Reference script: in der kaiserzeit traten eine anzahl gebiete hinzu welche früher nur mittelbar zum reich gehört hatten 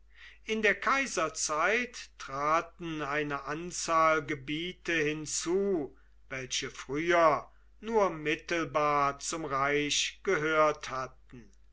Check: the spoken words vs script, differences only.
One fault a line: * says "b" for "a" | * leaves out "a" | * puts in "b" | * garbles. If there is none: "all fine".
all fine